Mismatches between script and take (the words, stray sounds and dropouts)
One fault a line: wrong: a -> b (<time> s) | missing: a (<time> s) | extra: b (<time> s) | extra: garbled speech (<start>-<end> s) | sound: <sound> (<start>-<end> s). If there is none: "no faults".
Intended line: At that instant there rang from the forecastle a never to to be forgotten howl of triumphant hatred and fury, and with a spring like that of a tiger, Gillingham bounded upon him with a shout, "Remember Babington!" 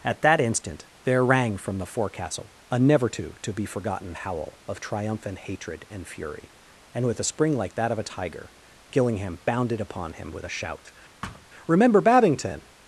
sound: thud (11.2-11.5 s)